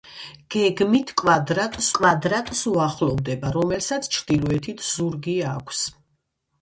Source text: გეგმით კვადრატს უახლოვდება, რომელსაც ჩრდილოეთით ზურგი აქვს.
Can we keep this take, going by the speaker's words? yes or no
no